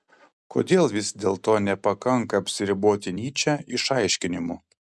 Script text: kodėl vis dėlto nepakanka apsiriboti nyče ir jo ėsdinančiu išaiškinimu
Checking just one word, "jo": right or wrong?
wrong